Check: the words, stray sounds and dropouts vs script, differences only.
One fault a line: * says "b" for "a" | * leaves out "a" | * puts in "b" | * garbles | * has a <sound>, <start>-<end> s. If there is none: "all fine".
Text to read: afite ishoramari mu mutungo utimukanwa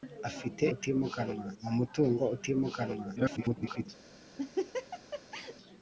* says "utimukanwa" for "ishoramari"
* garbles
* has a laugh, 4.4-5.6 s